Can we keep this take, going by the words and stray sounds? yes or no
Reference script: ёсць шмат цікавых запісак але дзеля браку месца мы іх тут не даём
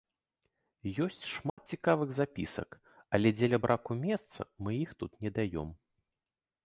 no